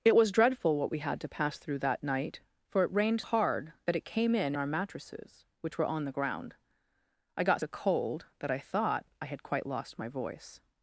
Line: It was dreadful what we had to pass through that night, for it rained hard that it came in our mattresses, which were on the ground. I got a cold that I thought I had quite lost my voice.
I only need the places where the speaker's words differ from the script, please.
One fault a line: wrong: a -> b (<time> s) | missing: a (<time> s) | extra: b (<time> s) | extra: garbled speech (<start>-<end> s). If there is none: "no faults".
no faults